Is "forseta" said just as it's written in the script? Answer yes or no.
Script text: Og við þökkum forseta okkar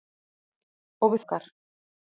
no